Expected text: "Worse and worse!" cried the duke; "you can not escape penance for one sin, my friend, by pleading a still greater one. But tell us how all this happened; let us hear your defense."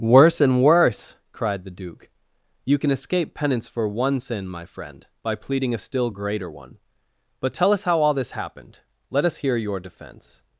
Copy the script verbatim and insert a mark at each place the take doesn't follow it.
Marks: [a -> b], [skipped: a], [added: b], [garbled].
"Worse and worse!" cried the duke; "you can [skipped: not] escape penance for one sin, my friend, by pleading a still greater one. But tell us how all this happened; let us hear your defense."